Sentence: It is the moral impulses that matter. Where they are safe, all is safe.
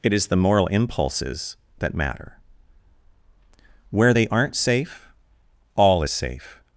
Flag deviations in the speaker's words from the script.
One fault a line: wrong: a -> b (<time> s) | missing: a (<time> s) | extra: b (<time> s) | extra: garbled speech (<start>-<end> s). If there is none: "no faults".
wrong: are -> aren't (4.3 s)